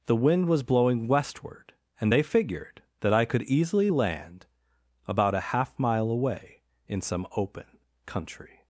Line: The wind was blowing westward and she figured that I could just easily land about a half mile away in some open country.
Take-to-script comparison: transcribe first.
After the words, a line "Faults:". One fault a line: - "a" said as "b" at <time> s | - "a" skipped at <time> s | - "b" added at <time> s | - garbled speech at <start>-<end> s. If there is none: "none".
The wind was blowing westward and they figured that I could easily land about a half mile away in some open country.
Faults:
- "she" said as "they" at 2.1 s
- "just" skipped at 3.4 s